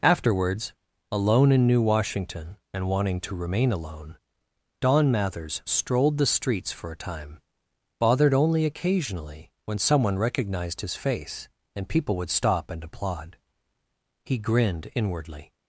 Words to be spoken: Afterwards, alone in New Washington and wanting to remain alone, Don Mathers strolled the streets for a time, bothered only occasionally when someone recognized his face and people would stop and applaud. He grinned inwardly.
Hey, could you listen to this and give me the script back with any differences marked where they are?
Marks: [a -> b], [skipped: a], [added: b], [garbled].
Afterwards, alone in New Washington and wanting to remain alone, Don Mathers strolled the streets for a time, bothered only occasionally when someone recognized his face and people would stop and applaud. He grinned inwardly.